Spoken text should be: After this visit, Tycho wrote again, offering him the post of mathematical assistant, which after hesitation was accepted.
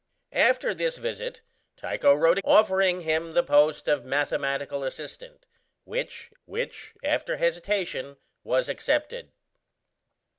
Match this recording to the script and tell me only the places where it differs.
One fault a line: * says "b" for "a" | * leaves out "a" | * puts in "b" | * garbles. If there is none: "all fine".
* leaves out "again"
* puts in "which"